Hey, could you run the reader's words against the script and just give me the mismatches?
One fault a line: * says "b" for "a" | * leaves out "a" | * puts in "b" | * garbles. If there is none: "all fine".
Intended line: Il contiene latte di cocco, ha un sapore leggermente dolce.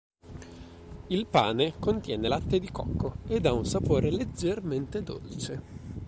* puts in "pane"
* puts in "ed"